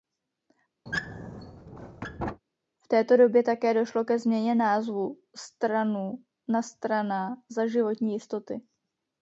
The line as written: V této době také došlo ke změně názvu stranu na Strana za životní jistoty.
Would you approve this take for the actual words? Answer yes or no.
yes